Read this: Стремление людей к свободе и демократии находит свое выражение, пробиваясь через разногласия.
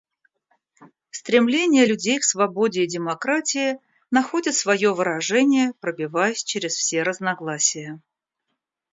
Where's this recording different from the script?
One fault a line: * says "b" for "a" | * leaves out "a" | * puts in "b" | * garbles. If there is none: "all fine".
* puts in "все"